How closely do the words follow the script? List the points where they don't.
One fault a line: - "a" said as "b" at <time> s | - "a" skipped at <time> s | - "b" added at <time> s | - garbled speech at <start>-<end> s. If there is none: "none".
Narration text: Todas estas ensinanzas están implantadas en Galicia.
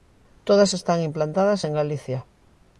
- "estas ensinanzas" skipped at 0.7 s